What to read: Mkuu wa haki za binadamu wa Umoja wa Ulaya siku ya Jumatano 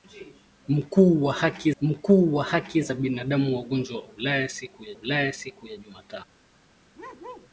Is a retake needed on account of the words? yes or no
yes